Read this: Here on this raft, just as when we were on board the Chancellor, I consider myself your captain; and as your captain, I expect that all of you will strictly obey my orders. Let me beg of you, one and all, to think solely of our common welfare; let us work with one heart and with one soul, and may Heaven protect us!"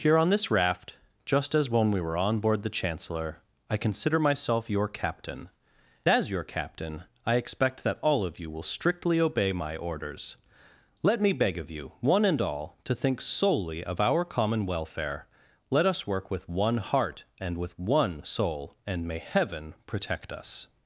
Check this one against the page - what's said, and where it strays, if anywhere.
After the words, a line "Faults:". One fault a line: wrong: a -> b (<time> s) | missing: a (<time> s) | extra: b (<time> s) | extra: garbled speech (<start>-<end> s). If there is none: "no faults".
Here on this raft, just as when we were on board the Chancellor, I consider myself your captain; as your captain, I expect that all of you will strictly obey my orders. Let me beg of you, one and all, to think solely of our common welfare; let us work with one heart and with one soul, and may Heaven protect us!"
Faults:
missing: and (5.5 s)